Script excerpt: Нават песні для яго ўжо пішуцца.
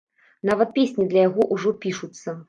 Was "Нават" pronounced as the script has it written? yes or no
yes